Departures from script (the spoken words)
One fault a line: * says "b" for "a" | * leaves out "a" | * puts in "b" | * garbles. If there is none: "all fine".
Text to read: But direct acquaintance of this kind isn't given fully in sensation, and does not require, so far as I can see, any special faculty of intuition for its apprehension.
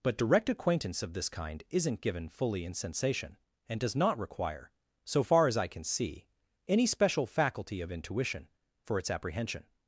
all fine